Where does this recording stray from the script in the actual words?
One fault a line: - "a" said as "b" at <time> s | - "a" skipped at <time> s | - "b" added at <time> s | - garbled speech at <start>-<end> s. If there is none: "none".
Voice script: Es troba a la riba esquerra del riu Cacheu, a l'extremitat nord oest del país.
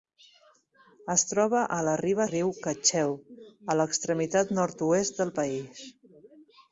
- "esquerra del" skipped at 2.2 s